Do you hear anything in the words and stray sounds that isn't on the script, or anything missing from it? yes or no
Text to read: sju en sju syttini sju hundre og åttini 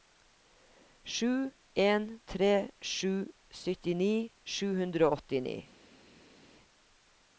yes